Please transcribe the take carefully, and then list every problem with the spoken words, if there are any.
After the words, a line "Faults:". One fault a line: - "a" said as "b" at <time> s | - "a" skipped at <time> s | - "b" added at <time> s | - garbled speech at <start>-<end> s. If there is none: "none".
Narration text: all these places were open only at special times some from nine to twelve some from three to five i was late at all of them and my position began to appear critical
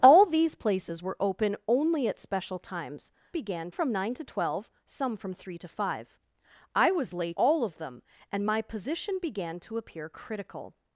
all these places were open only at special times began from nine to twelve some from three to five i was late all of them and my position began to appear critical
Faults:
- "some" said as "began" at 3.3 s
- "at" skipped at 7.4 s